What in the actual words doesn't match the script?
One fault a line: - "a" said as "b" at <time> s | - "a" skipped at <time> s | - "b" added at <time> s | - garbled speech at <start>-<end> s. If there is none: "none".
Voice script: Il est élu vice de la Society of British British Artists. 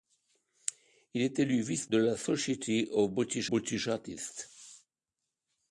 none